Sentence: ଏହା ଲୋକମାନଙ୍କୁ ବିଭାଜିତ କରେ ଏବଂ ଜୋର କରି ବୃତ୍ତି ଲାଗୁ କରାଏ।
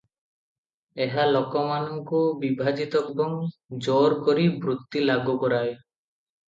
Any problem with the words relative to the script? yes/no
yes